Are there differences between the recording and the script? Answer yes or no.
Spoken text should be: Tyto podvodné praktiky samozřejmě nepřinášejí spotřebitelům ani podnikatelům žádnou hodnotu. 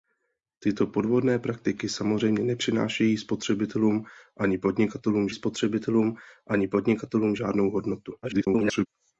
yes